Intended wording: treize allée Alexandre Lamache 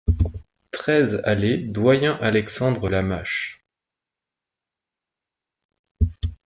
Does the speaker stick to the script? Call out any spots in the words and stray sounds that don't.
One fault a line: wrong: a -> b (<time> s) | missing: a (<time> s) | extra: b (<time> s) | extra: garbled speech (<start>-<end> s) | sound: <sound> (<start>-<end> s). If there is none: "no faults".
extra: Doyen (1.6 s)